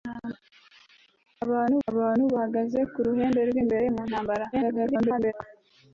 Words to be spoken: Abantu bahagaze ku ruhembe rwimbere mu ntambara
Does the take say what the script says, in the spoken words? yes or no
no